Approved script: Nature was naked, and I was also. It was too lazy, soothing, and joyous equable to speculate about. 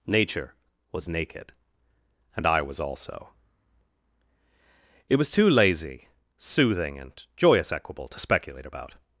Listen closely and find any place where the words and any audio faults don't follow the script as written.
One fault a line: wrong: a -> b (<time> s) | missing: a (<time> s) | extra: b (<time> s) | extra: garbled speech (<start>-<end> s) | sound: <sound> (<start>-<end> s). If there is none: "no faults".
no faults